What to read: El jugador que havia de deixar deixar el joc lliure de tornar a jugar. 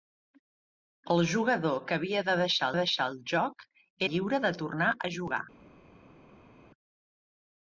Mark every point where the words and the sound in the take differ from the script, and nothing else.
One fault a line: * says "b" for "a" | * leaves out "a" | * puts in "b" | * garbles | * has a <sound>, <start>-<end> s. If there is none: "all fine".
all fine